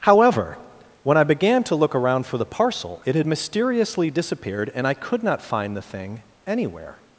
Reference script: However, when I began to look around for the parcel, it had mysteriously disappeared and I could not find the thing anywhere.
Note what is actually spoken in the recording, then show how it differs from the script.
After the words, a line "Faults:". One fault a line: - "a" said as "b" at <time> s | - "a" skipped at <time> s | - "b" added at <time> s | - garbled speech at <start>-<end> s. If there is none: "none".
However, when I began to look around for the parcel, it had mysteriously disappeared and I could not find the thing anywhere.
Faults:
none